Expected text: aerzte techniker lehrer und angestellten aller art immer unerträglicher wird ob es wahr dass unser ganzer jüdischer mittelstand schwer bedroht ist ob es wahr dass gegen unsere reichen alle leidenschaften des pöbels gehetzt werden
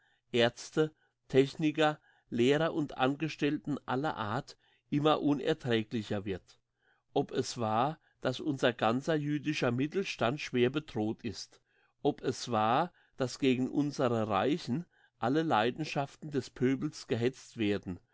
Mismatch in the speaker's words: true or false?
false